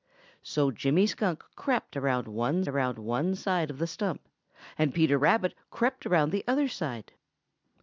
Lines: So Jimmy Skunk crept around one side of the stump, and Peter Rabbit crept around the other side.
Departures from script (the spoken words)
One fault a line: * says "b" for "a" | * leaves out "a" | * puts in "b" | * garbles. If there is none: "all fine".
* puts in "around one"